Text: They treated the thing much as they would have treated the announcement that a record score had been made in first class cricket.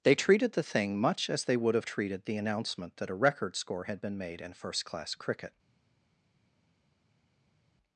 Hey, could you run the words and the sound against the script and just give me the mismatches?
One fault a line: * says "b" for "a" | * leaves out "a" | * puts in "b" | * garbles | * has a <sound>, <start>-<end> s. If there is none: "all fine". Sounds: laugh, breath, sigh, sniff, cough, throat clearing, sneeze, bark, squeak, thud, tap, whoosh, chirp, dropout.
all fine